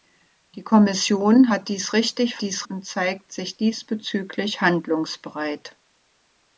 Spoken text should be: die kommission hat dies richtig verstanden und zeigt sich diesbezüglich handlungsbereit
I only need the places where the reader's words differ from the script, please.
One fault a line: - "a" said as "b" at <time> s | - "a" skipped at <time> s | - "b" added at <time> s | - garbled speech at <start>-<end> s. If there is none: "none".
- "verstanden" said as "dies" at 2.4 s